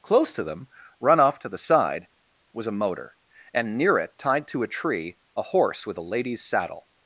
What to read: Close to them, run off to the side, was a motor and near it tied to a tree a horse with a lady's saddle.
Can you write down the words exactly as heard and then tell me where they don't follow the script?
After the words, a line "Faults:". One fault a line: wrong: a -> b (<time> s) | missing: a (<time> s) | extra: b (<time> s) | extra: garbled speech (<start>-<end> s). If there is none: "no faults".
Close to them, run off to the side, was a motor and near it tied to a tree a horse with a lady's saddle.
Faults:
no faults